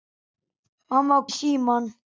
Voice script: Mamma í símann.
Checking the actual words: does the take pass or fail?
pass